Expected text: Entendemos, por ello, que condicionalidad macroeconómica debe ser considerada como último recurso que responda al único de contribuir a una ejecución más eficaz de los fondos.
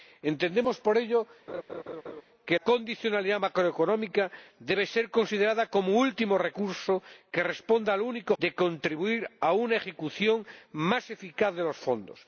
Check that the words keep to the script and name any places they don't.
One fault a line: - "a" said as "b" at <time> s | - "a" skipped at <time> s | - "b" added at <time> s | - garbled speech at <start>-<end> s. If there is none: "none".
none